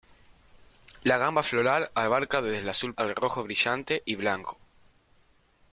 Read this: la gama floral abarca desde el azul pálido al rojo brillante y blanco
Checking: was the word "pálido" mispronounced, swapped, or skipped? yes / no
yes